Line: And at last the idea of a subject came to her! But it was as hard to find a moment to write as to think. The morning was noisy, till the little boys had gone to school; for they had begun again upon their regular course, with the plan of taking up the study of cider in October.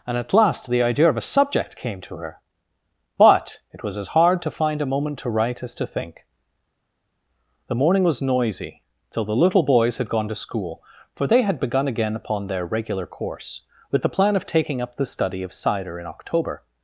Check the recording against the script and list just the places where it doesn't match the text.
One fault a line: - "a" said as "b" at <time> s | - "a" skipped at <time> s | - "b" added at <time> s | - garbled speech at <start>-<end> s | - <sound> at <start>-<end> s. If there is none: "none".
none